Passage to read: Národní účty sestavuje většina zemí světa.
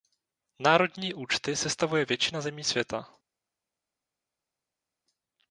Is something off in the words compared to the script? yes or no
no